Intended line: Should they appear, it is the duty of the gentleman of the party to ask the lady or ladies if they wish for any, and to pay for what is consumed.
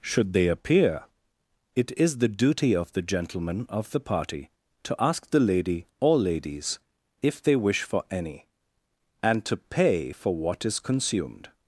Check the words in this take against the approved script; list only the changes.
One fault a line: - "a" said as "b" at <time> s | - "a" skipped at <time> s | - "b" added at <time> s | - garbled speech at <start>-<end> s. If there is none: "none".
none